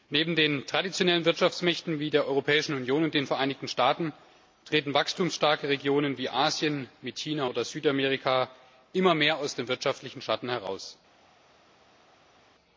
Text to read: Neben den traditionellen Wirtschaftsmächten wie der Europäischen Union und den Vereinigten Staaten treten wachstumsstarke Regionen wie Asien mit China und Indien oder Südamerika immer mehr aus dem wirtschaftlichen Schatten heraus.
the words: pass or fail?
fail